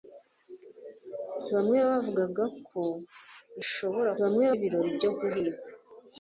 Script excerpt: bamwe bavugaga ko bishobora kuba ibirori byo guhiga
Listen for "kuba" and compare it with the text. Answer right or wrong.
wrong